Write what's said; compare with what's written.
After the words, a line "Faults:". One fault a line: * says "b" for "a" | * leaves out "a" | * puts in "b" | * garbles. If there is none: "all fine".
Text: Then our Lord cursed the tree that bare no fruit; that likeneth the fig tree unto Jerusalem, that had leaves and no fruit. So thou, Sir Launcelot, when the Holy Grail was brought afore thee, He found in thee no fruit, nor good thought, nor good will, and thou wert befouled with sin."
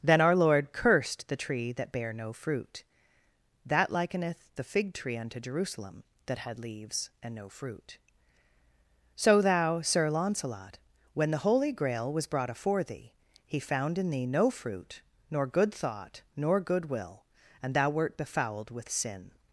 Then our Lord cursed the tree that bare no fruit; that likeneth the fig tree unto Jerusalem, that had leaves and no fruit. So thou, Sir Launcelot, when the Holy Grail was brought afore thee, He found in thee no fruit, nor good thought, nor good will, and thou wert befouled with sin."
Faults:
all fine